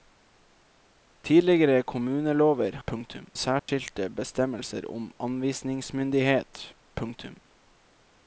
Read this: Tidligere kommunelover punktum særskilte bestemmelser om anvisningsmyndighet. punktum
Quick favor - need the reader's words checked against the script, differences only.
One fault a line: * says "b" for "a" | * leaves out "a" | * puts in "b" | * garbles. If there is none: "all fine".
all fine